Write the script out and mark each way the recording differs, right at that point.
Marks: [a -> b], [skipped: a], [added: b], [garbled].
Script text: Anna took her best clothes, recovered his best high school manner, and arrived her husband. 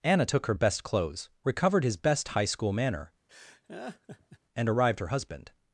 Anna took her best clothes, recovered his best high school manner, and arrived her husband.